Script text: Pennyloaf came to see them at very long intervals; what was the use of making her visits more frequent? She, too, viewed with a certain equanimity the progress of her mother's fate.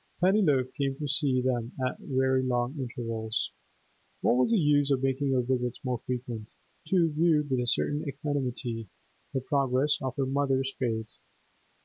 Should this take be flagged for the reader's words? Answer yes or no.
yes